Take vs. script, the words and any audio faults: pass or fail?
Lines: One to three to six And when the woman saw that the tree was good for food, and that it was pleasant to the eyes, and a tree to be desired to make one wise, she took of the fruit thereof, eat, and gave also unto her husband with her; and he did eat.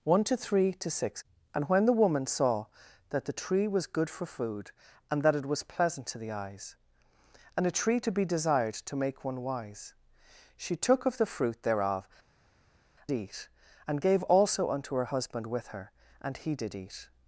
pass